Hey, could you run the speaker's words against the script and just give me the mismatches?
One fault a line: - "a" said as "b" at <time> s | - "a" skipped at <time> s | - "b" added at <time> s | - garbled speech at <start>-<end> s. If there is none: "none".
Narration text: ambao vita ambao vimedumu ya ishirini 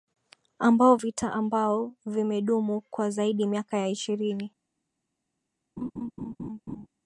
- "kwa zaidi miaka" added at 2.9 s